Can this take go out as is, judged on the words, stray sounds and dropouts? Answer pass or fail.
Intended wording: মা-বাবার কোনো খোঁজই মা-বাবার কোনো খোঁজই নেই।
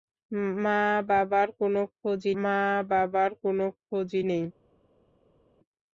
pass